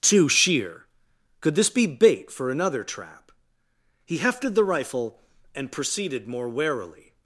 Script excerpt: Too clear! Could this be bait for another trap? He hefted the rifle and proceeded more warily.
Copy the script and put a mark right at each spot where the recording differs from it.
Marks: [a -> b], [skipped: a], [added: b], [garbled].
Too [clear! -> sheer] Could this be bait for another trap? He hefted the rifle and proceeded more warily.